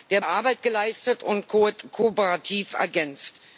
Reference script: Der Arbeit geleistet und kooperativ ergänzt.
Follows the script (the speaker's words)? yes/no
yes